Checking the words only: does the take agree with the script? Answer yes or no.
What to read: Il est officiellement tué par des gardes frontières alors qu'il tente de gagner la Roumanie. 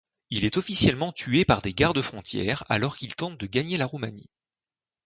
yes